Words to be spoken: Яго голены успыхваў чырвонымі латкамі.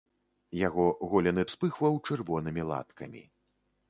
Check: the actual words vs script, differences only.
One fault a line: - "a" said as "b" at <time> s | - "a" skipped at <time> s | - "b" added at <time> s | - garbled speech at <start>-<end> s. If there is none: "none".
none